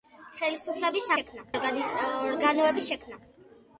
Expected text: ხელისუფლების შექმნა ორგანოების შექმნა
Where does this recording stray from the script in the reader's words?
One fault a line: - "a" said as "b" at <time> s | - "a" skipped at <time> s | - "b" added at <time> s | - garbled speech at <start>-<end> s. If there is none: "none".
none